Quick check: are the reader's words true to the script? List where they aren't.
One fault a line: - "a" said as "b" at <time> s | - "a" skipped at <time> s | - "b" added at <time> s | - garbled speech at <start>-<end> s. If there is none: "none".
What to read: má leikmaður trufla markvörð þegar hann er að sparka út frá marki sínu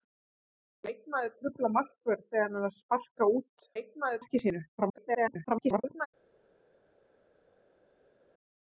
- "frá" said as "leikmaður" at 3.8 s
- garbled speech at 4.8-6.1 s